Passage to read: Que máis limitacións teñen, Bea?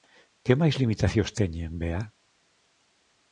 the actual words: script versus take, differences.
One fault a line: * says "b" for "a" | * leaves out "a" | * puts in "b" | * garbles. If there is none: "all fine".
all fine